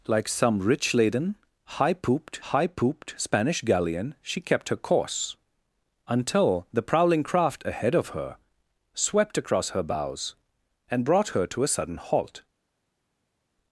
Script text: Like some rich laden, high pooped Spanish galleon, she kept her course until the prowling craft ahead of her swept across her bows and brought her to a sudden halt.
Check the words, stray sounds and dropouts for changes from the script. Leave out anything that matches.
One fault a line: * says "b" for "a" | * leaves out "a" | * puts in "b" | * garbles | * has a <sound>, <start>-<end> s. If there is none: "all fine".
* puts in "high pooped"